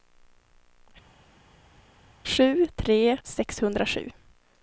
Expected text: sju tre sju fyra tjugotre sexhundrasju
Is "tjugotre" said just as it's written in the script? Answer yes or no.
no